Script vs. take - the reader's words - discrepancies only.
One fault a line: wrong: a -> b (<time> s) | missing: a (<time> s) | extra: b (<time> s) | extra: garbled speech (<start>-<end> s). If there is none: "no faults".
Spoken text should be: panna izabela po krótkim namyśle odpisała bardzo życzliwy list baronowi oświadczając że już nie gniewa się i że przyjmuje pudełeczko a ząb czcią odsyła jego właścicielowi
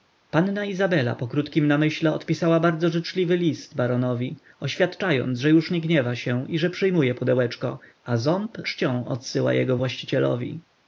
no faults